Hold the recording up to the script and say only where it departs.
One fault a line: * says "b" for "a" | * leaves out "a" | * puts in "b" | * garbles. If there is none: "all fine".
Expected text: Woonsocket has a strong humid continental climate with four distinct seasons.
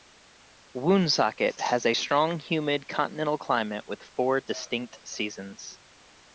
all fine